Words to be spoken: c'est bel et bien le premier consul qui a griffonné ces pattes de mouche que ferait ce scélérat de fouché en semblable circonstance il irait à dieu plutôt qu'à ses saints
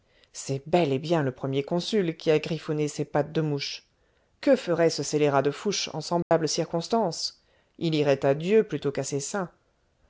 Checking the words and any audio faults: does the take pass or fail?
fail